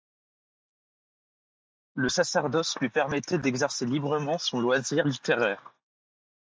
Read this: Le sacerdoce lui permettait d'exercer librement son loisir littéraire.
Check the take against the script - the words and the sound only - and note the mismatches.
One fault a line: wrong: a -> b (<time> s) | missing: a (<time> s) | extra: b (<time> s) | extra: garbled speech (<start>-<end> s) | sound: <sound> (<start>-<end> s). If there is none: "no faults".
no faults